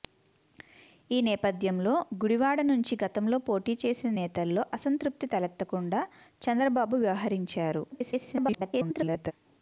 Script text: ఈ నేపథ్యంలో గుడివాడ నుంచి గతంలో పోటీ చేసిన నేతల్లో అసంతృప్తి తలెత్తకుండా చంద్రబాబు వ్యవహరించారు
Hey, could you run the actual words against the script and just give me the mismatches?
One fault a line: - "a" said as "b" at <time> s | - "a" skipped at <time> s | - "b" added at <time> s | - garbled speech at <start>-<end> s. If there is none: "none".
- garbled speech at 7.9-9.3 s